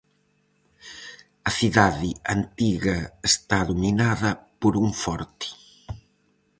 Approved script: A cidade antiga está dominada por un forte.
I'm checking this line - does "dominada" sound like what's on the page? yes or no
yes